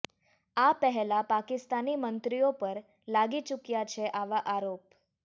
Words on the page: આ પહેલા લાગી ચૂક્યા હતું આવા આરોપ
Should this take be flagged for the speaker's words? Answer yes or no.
yes